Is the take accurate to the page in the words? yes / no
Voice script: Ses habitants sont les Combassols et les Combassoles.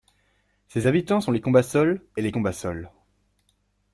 yes